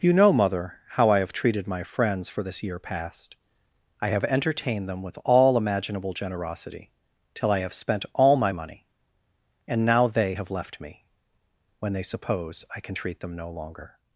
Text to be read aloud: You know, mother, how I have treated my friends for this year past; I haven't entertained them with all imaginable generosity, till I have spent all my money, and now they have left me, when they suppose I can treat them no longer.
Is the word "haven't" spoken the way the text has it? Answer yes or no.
no